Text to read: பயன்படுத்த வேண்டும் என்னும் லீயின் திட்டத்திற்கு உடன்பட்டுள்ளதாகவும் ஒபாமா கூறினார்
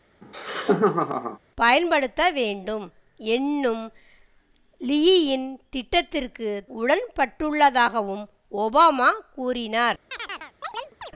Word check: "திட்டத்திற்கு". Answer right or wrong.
right